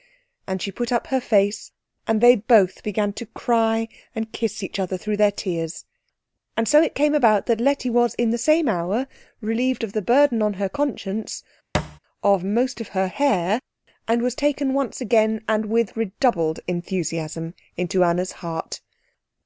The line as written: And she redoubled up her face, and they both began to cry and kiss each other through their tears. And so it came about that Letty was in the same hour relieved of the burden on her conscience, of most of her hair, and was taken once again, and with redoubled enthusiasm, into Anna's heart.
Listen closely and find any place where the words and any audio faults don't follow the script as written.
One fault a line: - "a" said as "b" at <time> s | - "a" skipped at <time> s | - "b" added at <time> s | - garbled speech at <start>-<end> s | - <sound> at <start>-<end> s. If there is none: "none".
- "redoubled" said as "put" at 0.7 s
- thud at 11.7-12.0 s